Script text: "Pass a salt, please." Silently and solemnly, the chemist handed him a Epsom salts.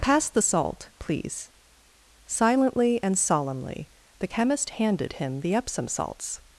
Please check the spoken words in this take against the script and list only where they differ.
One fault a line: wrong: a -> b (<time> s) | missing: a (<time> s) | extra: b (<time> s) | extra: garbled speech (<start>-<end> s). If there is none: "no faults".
wrong: a -> the (0.3 s)
wrong: a -> the (5.4 s)